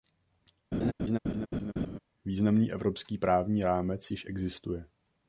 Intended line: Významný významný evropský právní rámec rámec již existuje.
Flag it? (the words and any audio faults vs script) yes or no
yes